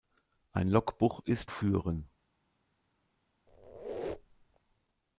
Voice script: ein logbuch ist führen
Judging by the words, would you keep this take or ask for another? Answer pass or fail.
pass